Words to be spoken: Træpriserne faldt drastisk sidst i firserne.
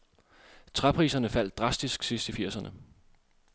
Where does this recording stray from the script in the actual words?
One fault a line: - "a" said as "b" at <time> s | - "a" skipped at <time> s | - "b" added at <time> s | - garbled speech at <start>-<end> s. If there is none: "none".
none